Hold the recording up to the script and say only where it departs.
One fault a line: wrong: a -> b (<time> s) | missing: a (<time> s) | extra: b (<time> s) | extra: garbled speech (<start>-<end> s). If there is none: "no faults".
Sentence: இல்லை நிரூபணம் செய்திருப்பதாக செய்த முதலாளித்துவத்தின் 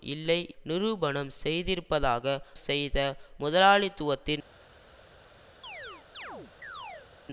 no faults